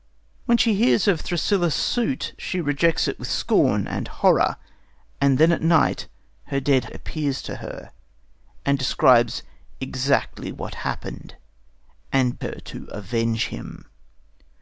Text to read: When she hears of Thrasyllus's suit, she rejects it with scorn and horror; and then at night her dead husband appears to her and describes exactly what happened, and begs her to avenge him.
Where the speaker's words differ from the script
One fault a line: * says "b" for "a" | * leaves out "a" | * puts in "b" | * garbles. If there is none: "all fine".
* leaves out "husband"
* leaves out "begs"